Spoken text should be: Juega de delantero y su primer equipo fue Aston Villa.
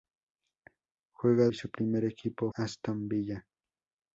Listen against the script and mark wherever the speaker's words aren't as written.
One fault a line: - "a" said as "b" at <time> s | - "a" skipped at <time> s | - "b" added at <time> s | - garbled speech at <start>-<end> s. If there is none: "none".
- "de delantero" skipped at 1.5 s
- "fue" skipped at 2.5 s